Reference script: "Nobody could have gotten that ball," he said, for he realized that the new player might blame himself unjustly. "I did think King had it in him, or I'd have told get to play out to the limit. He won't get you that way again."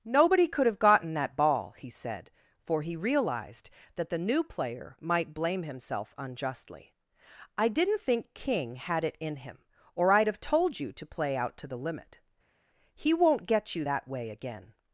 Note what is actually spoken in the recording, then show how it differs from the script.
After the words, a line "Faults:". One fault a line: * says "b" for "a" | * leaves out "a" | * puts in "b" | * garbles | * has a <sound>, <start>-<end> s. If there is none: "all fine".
"Nobody could have gotten that ball," he said, for he realized that the new player might blame himself unjustly. "I didn't think King had it in him, or I'd have told you to play out to the limit. He won't get you that way again."
Faults:
* says "didn't" for "did"
* says "you" for "get"